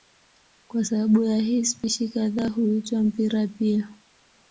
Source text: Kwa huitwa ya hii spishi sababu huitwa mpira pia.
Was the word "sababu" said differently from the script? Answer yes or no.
yes